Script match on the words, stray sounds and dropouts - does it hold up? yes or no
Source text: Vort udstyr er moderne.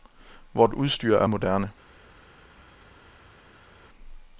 yes